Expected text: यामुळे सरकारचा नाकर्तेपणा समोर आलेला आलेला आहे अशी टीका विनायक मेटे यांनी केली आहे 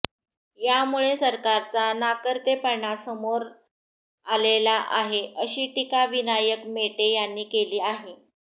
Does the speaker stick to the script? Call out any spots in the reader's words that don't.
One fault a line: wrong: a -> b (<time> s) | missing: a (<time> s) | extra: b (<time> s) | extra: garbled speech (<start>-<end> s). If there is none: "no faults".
missing: आलेला (4.8 s)